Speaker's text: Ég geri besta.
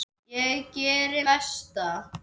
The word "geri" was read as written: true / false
true